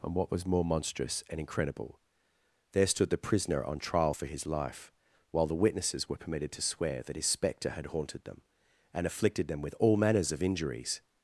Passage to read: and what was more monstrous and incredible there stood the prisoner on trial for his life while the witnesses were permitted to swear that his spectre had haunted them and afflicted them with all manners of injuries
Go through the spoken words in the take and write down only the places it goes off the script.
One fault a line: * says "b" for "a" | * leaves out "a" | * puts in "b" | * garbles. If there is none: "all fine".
all fine